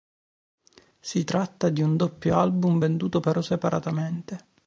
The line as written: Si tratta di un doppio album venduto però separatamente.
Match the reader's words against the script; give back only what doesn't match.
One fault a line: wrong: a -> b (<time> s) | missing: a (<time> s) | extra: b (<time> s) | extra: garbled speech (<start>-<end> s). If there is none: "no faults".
no faults